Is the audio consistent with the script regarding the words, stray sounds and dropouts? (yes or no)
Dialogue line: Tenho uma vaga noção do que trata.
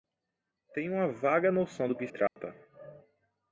no